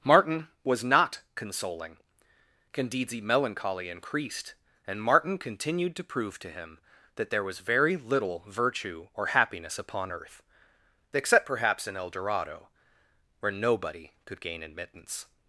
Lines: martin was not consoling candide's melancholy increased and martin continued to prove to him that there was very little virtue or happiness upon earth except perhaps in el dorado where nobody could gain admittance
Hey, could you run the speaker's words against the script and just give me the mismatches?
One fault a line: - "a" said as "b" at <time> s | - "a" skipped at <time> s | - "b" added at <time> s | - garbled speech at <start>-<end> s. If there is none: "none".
none